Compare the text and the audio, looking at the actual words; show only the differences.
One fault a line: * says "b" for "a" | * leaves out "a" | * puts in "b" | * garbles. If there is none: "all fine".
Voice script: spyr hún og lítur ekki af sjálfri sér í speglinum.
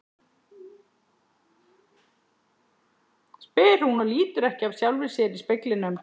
all fine